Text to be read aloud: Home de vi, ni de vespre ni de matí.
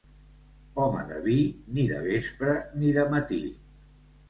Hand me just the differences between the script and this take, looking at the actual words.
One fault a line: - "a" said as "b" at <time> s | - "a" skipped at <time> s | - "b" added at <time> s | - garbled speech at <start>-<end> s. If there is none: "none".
none